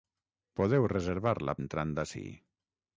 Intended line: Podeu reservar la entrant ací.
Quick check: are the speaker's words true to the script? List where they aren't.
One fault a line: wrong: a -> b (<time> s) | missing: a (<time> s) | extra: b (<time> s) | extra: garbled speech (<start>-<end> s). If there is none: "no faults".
no faults